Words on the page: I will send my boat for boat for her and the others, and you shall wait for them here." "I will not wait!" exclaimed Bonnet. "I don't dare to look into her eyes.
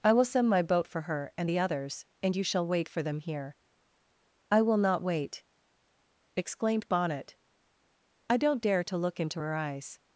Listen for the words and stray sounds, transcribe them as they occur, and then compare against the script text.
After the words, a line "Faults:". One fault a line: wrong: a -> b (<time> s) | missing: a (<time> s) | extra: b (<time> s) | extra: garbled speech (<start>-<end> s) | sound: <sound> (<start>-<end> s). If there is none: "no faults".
I will send my boat for her and the others, and you shall wait for them here." "I will not wait!" exclaimed Bonnet. "I don't dare to look into her eyes.
Faults:
missing: boat for (1.0 s)